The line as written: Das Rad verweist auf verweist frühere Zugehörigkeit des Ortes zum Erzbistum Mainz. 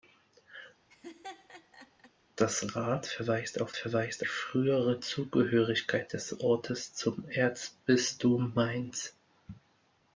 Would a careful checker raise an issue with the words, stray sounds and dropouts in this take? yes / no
yes